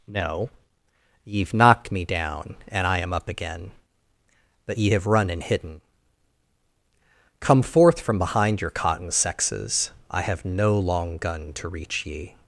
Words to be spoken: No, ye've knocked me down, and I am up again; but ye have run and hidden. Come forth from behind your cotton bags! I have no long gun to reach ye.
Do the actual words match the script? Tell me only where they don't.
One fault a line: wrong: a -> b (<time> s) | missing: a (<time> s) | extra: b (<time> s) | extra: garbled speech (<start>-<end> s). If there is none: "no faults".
wrong: bags -> sexes (9.1 s)